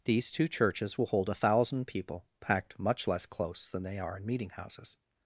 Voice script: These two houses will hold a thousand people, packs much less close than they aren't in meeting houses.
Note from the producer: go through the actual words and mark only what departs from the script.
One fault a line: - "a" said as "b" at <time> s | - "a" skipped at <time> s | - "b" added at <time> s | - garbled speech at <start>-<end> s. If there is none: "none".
- "houses" said as "churches" at 0.5 s
- "packs" said as "packed" at 2.4 s
- "aren't" said as "are" at 4.0 s